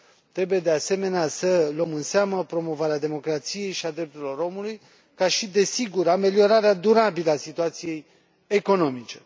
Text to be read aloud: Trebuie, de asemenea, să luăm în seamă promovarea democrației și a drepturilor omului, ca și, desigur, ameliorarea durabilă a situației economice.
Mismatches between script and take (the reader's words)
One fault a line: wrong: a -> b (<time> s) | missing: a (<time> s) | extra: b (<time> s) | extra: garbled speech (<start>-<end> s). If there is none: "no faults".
no faults